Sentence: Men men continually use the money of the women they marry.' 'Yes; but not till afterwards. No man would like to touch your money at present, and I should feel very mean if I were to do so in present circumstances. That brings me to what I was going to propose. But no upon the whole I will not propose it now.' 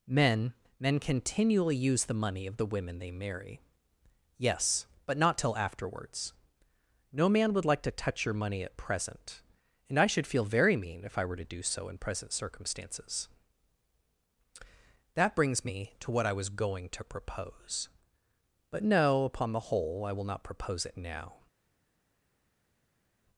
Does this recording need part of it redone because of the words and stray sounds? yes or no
no